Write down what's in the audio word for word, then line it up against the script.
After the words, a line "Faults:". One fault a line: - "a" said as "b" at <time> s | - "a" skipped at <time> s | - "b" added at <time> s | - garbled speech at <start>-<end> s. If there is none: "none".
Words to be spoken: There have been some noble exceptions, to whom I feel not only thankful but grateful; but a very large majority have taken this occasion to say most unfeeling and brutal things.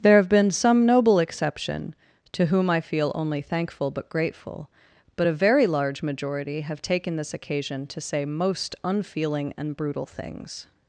There have been some noble exception, to whom I feel only thankful but grateful; but a very large majority have taken this occasion to say most unfeeling and brutal things.
Faults:
- "exceptions" said as "exception" at 1.2 s
- "not" skipped at 3.1 s